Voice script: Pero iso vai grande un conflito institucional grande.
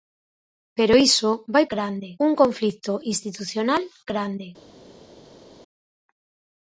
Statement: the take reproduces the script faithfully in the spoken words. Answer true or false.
true